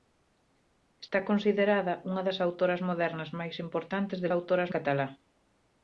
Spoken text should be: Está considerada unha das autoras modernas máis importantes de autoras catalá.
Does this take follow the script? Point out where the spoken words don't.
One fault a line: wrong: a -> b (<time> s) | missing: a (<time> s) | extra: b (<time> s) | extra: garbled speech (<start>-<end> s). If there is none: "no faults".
no faults